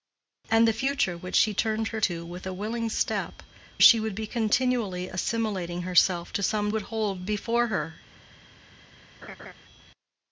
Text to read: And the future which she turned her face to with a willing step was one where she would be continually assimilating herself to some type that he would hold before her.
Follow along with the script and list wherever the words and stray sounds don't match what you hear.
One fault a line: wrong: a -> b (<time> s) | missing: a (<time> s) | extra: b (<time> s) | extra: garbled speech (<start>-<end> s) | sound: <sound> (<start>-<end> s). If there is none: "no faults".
missing: face (2.0 s)
missing: was one where (3.4 s)
missing: type that he (6.7 s)
sound: laugh (9.2-9.5 s)